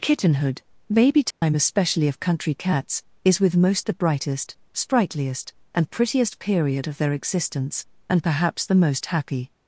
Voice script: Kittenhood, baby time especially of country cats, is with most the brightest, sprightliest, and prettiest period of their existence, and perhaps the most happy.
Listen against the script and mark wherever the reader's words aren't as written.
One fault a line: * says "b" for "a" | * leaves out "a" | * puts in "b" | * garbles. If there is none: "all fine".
all fine